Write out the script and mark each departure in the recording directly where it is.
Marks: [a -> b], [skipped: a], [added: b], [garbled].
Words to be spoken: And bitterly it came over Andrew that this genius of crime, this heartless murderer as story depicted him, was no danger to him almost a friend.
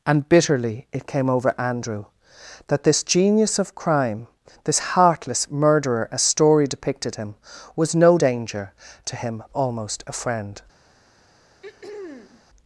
And bitterly it came over Andrew that this genius of crime, this heartless murderer as story depicted him, was no danger to him almost a friend.